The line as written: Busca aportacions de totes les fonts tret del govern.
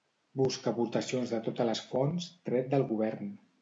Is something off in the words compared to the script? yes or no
no